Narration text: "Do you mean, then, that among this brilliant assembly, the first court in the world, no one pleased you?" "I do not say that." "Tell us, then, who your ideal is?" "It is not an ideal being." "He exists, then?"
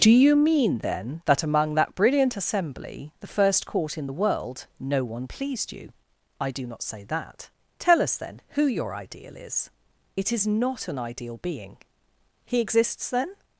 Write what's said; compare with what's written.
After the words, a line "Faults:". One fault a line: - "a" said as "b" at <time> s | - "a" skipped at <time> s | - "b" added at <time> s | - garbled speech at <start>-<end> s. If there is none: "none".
"Do you mean, then, that among that brilliant assembly, the first court in the world, no one pleased you?" "I do not say that." "Tell us, then, who your ideal is?" "It is not an ideal being." "He exists, then?"
Faults:
- "this" said as "that" at 1.8 s